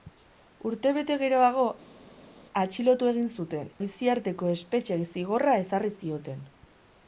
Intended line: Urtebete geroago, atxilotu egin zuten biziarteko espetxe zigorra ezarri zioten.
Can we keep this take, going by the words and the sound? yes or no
yes